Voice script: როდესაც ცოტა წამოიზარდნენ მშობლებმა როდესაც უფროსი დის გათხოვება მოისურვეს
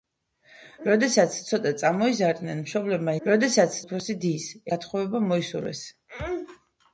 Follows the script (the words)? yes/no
yes